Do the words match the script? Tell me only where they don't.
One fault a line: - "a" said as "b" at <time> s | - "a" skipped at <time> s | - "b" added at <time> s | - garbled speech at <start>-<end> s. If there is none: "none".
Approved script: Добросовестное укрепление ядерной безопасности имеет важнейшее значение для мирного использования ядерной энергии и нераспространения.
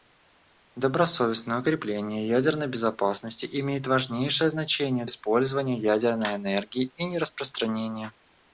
- "для мирного" skipped at 5.0 s